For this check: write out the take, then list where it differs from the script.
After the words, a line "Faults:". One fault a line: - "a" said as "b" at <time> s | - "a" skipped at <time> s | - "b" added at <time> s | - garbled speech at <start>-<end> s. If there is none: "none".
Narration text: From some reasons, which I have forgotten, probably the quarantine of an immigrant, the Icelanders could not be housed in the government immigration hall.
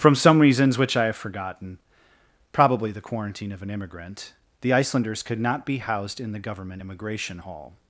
From some reasons, which I have forgotten, probably the quarantine of an immigrant, the Icelanders could not be housed in the government immigration hall.
Faults:
none